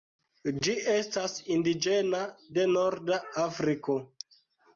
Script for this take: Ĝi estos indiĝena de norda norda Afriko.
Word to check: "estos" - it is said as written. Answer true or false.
false